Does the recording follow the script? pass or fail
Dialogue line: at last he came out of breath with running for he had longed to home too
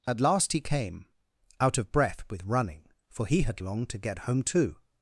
fail